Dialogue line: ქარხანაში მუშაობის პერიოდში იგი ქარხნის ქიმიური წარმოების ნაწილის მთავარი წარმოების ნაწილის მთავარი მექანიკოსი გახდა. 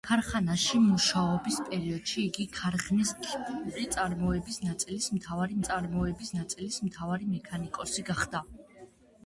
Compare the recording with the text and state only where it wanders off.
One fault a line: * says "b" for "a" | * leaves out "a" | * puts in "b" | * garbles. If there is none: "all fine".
all fine